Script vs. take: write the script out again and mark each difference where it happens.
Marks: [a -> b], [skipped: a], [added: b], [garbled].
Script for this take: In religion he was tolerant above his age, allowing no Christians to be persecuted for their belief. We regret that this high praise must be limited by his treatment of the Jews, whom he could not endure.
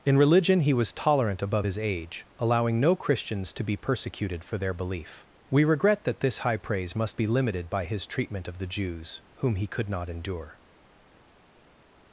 In religion he was tolerant above his age, allowing no Christians to be persecuted for their belief. We regret that this high praise must be limited by his treatment of the Jews, whom he could not endure.